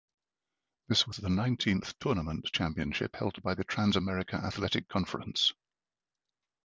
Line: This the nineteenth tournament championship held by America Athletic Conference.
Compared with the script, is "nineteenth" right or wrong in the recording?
right